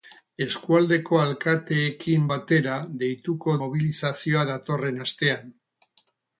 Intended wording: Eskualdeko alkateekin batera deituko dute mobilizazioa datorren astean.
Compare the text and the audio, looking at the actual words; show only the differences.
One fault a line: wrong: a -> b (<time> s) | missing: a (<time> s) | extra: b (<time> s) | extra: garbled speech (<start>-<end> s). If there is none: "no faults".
missing: dute (3.6 s)